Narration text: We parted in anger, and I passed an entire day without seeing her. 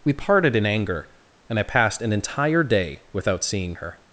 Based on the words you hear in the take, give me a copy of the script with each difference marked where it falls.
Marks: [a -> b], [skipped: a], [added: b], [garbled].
We parted in anger, and I passed an entire day without seeing her.